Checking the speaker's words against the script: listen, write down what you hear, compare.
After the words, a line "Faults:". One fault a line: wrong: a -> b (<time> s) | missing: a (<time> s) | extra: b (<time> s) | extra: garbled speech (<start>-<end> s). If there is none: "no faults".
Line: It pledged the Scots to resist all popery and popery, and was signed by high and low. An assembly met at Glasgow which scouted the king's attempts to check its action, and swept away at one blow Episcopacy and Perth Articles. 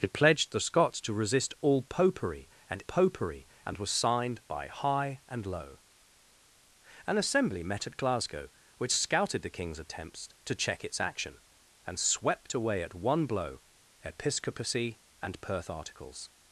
It pledged the Scots to resist all popery and popery, and was signed by high and low. An assembly met at Glasgow which scouted the king's attempts to check its action, and swept away at one blow Episcopacy and Perth Articles.
Faults:
no faults